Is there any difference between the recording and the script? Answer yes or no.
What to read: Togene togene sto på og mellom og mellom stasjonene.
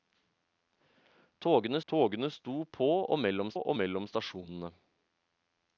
no